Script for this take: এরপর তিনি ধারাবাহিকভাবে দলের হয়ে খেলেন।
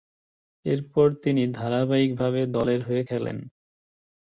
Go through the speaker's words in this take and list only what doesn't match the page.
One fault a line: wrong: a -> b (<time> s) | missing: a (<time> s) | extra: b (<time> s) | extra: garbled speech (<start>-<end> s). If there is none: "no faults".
no faults